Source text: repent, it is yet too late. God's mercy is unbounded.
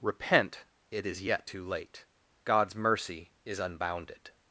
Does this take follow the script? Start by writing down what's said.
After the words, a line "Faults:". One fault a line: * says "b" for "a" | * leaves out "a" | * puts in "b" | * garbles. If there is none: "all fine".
repent, it is yet too late. God's mercy is unbounded.
Faults:
all fine